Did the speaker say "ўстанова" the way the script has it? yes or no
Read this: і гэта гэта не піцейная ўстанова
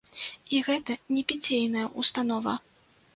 yes